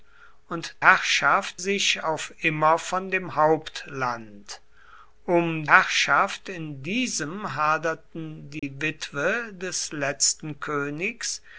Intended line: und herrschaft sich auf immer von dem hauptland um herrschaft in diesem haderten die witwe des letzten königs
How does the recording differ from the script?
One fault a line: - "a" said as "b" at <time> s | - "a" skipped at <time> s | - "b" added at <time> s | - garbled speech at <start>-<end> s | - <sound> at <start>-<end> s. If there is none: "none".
- dropout at 8.6-8.6 s